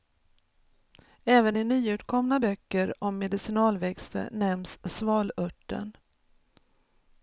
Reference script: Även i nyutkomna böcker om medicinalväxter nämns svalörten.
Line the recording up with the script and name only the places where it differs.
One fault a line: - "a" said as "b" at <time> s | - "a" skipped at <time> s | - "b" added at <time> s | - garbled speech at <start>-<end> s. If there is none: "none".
none